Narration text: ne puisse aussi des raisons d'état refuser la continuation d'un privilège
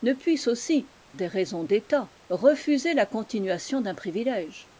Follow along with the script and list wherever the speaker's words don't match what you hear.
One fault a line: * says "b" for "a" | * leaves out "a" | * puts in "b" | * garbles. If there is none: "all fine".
all fine